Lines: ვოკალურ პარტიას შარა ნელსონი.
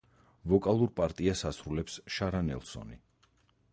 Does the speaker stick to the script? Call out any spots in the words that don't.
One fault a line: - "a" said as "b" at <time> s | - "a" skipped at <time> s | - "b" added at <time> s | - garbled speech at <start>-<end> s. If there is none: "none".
- "ასრულებს" added at 1.5 s